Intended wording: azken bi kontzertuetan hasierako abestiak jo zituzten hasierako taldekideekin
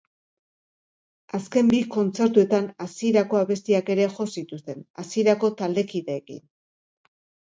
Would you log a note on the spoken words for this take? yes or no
yes